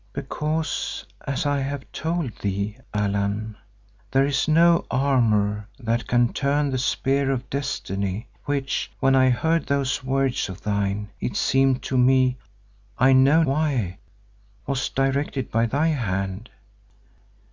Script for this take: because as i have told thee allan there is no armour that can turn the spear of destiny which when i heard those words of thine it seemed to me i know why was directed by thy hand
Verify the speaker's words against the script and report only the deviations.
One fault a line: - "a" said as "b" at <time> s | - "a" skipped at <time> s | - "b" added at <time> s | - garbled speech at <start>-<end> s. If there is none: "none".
none